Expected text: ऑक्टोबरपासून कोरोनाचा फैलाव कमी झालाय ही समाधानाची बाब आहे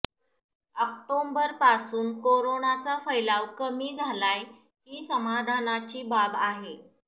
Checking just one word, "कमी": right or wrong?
right